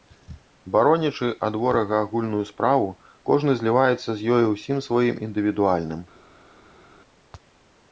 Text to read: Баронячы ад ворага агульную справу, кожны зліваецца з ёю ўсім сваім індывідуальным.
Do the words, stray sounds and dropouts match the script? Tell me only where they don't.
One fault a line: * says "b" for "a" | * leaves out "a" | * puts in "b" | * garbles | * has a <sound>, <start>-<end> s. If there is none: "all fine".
all fine